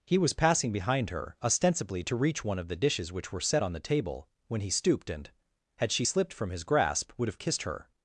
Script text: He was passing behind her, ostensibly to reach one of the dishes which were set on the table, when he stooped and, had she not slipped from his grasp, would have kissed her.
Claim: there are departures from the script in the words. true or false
true